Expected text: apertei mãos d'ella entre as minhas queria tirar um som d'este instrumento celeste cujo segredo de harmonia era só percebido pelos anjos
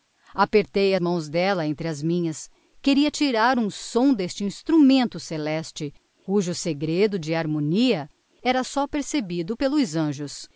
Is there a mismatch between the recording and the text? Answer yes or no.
no